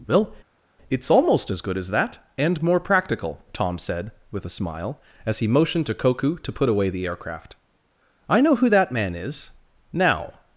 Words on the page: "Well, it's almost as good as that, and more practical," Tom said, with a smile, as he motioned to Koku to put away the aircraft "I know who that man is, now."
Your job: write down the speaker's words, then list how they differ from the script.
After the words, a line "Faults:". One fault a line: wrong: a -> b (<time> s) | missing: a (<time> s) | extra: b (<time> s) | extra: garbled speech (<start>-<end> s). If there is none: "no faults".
"Well, it's almost as good as that, and more practical," Tom said, with a smile, as he motioned to Koku to put away the aircraft "I know who that man is, now."
Faults:
no faults